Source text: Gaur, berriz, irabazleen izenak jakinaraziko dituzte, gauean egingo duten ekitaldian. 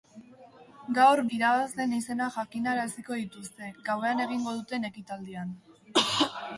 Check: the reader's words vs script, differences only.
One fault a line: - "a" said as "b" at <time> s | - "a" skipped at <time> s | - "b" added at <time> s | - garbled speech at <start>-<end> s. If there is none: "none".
- "berriz" skipped at 1.2 s